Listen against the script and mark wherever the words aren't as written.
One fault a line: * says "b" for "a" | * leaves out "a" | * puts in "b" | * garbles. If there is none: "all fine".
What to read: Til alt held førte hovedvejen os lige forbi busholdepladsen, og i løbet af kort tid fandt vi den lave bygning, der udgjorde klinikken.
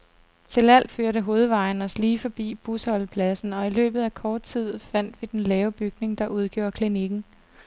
* leaves out "held"